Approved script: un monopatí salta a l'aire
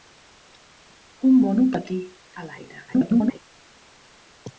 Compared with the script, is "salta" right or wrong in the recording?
wrong